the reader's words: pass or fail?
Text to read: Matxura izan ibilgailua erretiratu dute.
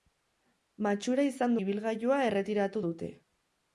pass